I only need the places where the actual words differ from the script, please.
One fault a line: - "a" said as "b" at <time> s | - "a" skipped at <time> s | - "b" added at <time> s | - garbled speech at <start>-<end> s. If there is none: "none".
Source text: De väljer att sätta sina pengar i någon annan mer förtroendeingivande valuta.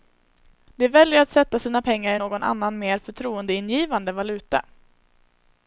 none